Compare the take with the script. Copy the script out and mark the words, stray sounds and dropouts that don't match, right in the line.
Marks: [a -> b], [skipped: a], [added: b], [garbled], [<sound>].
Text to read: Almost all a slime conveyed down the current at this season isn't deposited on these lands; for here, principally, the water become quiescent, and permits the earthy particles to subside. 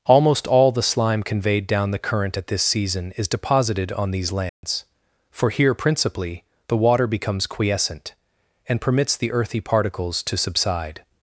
Almost all [a -> the] slime conveyed down the current at this season [isn't -> is] deposited on these lands; [dropout] for here, principally, the water [become -> becomes] quiescent, and permits the earthy particles to subside.